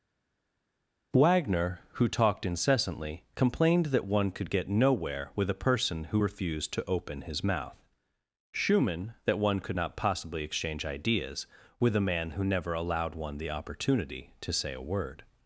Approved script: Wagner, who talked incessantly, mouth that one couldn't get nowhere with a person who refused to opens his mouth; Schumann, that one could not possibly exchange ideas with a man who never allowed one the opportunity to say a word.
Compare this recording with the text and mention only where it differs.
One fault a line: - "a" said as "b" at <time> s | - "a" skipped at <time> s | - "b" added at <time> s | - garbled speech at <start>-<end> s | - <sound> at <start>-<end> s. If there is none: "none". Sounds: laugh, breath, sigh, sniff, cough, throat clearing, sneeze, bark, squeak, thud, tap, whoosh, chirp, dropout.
- "mouth" said as "complained" at 3.4 s
- "couldn't" said as "could" at 4.3 s
- "opens" said as "open" at 6.9 s